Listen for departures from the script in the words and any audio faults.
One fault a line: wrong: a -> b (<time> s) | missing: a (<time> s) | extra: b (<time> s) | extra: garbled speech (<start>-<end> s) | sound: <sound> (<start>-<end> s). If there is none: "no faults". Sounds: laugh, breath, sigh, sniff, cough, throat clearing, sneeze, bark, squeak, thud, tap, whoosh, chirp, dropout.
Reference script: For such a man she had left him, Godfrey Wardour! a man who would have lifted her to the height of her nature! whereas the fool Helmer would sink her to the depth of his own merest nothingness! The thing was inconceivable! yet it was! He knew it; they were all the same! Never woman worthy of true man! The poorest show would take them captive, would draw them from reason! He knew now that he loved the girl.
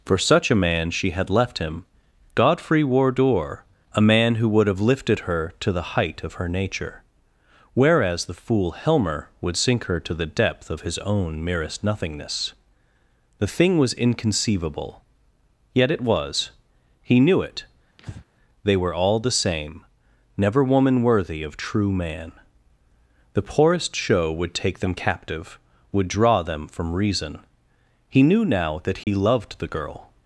sound: breath (18.0-18.3 s)
sound: dropout (29.0-29.1 s)